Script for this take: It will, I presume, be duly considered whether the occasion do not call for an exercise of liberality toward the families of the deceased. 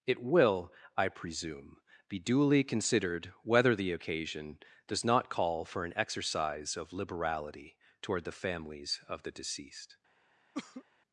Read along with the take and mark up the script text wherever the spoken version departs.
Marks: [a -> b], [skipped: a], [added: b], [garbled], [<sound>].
It will, I presume, be duly considered whether the occasion [do -> does] not call for an exercise of liberality toward the families of the deceased. [cough]